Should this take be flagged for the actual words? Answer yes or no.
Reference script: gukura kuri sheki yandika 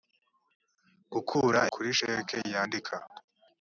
no